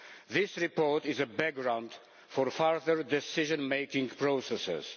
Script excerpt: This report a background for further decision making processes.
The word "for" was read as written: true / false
true